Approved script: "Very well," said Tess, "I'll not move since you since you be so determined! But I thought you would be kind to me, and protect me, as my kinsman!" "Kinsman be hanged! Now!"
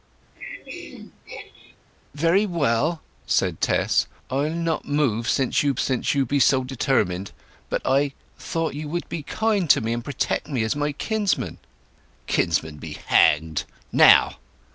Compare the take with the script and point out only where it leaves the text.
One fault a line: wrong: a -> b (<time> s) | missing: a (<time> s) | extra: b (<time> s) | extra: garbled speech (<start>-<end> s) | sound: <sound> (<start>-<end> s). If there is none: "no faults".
sound: throat clearing (0.3-1.8 s)